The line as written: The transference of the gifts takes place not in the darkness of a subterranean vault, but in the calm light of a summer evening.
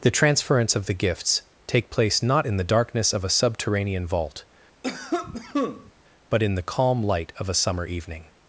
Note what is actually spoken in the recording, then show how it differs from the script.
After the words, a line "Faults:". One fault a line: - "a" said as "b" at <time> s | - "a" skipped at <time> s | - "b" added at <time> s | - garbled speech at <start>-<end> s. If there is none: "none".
The transference of the gifts take place not in the darkness of a subterranean vault, but in the calm light of a summer evening.
Faults:
- "takes" said as "take" at 1.7 s